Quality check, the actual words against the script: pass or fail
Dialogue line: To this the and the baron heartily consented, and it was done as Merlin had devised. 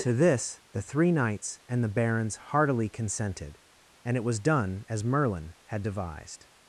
fail